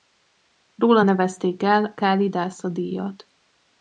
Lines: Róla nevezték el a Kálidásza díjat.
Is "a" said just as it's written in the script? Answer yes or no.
no